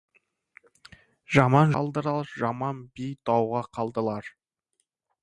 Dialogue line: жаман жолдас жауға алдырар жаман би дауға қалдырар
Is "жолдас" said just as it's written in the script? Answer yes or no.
no